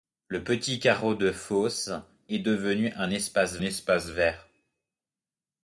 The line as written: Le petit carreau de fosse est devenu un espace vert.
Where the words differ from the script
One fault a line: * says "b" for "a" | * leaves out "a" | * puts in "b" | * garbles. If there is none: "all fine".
* puts in "espace"